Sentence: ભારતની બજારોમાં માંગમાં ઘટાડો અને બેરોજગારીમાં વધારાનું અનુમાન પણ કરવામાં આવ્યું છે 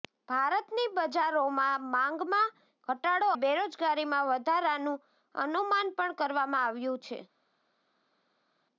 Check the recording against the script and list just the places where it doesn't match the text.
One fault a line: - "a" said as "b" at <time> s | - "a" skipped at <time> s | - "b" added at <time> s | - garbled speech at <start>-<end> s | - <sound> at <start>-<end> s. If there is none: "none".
- "અને" skipped at 3.3 s